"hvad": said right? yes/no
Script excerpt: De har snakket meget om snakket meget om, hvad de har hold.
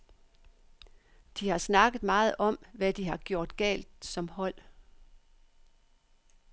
no